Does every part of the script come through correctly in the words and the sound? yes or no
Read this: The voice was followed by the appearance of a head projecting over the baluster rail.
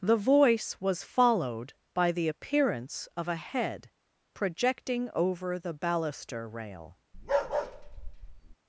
no